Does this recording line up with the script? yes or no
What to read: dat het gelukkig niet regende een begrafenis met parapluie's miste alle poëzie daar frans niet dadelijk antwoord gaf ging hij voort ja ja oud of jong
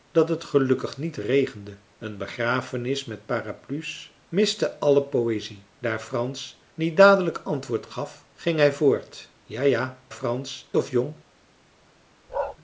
no